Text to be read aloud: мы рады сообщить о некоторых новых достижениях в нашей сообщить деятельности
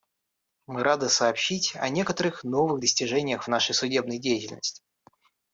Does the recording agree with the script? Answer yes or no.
no